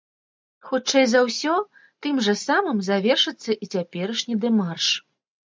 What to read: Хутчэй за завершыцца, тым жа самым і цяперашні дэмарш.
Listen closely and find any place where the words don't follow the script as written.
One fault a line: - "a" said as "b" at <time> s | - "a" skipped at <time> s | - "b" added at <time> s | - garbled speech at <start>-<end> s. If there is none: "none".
- "завершыцца" said as "ўсё" at 1.3 s
- "завершыцца" added at 2.9 s